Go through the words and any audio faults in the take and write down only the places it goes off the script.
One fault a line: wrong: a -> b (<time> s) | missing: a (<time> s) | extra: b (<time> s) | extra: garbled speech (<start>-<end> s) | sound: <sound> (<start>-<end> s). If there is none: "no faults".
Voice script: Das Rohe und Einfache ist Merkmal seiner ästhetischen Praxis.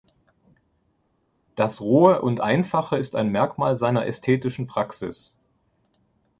extra: ein (3.2 s)